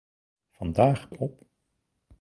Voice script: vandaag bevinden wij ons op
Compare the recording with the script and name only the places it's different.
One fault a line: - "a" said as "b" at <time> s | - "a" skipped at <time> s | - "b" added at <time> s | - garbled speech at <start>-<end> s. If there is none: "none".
- "bevinden wij ons" skipped at 1.1 s